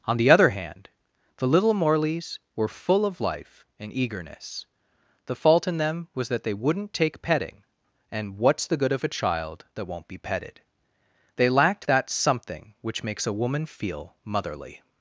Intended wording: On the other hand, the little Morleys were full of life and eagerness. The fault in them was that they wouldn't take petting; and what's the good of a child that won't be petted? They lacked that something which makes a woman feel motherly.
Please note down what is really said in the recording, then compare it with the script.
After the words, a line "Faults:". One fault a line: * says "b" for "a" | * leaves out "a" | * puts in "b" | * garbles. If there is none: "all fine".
On the other hand, the little Morleys were full of life and eagerness. The fault in them was that they wouldn't take petting; and what's the good of a child that won't be petted? They lacked that something which makes a woman feel motherly.
Faults:
all fine